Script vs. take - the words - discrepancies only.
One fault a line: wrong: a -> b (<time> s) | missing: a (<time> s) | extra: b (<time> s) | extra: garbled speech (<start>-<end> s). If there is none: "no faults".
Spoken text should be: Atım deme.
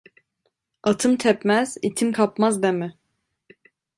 extra: tepmez itim kapmaz (1.2 s)